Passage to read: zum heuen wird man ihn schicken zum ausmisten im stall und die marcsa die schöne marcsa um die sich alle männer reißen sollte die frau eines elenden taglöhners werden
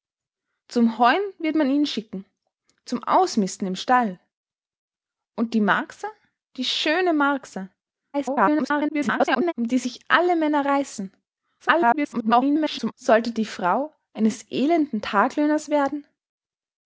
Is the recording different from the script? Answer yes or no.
yes